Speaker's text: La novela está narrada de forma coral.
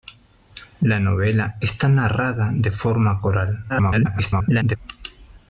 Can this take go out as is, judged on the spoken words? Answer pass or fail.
fail